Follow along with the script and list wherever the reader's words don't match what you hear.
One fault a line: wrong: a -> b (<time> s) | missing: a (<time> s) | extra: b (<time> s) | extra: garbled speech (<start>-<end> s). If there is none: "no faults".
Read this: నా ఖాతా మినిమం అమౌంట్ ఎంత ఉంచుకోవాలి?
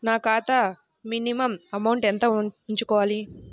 no faults